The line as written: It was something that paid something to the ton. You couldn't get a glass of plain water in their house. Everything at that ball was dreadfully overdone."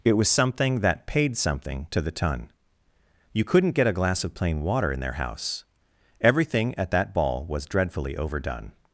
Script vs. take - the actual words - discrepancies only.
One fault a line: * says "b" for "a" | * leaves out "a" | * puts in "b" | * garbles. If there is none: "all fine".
all fine